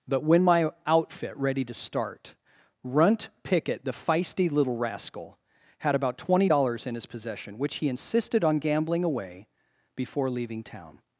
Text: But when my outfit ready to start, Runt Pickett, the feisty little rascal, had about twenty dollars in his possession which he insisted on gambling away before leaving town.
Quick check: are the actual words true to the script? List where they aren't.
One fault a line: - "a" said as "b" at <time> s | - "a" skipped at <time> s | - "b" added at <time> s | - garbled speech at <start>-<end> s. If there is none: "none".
none